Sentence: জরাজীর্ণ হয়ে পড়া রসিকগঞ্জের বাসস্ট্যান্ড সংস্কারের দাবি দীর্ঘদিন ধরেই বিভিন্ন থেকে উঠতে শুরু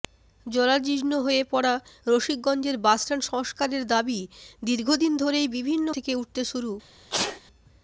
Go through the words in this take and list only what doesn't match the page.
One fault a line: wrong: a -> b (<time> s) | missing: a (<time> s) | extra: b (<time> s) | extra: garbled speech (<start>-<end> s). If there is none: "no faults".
no faults